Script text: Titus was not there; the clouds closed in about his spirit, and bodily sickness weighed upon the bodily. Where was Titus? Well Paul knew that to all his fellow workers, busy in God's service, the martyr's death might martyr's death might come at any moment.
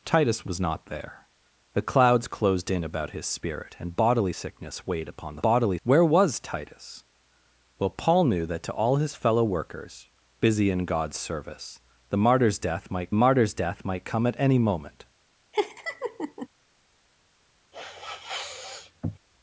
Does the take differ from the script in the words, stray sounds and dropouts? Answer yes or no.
yes